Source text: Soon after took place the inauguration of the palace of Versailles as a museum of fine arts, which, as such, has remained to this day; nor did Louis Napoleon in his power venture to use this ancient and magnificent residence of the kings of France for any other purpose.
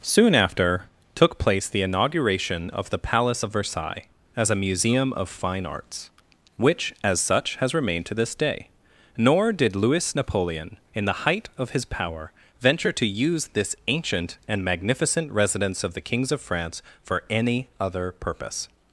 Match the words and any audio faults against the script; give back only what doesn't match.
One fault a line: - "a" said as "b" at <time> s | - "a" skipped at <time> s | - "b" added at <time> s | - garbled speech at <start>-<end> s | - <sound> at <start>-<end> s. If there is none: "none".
- "the height of" added at 11.0 s